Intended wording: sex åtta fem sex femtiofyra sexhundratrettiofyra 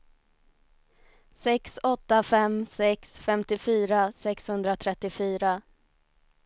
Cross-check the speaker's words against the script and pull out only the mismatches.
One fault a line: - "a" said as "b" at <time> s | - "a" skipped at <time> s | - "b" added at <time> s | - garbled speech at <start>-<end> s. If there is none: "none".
none